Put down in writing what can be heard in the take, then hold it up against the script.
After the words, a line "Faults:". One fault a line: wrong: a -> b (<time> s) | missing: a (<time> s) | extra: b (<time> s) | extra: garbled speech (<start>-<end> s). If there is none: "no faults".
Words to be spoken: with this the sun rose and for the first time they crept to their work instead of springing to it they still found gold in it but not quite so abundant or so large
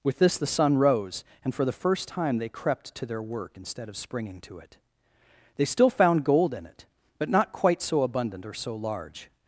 with this the sun rose and for the first time they crept to their work instead of springing to it they still found gold in it but not quite so abundant or so large
Faults:
no faults